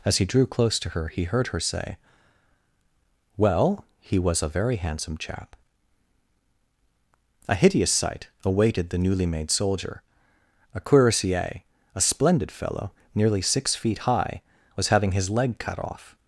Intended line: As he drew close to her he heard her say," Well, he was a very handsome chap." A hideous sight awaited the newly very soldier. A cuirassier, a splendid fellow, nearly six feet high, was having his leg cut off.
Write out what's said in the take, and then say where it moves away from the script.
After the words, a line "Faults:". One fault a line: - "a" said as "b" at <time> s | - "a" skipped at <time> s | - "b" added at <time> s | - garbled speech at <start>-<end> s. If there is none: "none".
As he drew close to her he heard her say," Well, he was a very handsome chap." A hideous sight awaited the newly made soldier. A cuirassier, a splendid fellow, nearly six feet high, was having his leg cut off.
Faults:
- "very" said as "made" at 9.2 s